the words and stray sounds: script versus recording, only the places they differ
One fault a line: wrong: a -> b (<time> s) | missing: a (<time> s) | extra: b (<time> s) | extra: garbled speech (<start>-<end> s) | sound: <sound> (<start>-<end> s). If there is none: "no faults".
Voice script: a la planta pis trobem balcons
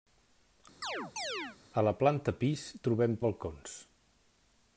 sound: chirp (0.8-1.6 s)